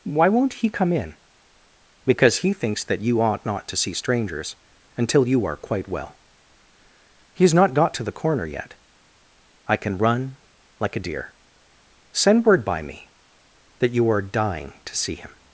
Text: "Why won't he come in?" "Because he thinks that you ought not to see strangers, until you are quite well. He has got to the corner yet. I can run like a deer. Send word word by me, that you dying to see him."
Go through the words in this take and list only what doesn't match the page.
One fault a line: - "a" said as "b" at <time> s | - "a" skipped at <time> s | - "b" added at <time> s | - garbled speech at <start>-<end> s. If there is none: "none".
- "not" added at 7.5 s
- "word" skipped at 12.6 s
- "are" added at 14.1 s